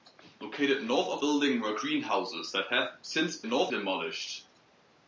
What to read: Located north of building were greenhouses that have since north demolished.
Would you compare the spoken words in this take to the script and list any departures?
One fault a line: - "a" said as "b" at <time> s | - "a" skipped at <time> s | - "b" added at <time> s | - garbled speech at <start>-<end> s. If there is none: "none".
none